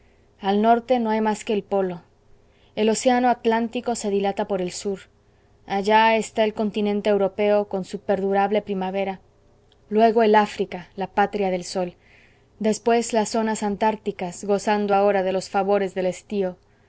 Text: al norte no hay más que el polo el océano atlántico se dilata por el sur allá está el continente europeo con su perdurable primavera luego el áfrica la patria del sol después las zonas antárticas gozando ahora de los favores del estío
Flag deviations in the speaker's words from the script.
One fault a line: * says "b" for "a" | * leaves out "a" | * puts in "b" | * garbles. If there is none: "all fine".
all fine